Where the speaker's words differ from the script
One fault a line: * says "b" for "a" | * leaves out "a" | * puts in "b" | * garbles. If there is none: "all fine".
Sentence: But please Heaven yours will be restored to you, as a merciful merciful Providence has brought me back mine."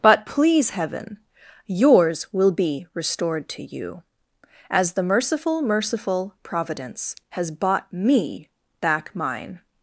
* says "the" for "a"
* says "bought" for "brought"